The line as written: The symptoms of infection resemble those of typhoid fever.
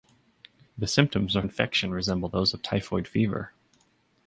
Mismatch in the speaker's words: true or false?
false